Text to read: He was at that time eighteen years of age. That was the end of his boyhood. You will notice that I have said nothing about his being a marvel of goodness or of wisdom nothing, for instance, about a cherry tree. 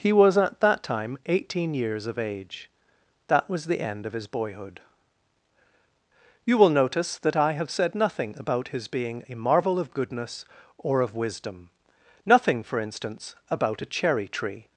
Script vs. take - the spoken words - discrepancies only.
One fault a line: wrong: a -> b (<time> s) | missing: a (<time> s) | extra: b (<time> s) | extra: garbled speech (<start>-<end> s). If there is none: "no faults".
no faults